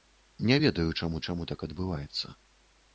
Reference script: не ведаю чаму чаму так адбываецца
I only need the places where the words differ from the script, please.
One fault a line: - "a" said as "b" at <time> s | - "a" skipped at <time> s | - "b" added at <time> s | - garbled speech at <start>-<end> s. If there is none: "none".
none